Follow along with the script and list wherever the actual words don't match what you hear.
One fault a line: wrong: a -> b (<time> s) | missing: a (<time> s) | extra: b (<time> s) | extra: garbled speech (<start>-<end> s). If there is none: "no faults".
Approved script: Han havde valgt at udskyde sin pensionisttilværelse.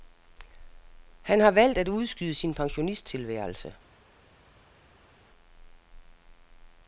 wrong: havde -> har (1.4 s)